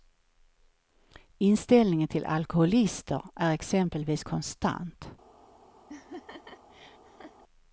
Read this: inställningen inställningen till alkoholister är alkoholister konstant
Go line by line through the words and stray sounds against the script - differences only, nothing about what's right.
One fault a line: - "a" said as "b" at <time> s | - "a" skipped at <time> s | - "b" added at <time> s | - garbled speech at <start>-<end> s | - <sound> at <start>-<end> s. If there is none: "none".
- "inställningen" skipped at 2.1 s
- "alkoholister" said as "exempelvis" at 3.5 s
- laugh at 5.9-7.4 s